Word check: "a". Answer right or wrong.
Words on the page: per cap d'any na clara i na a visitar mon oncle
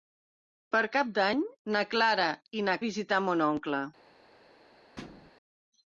right